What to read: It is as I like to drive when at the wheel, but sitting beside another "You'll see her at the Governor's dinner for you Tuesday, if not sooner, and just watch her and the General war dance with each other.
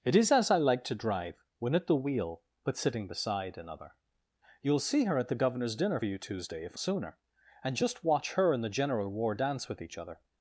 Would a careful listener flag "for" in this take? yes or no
yes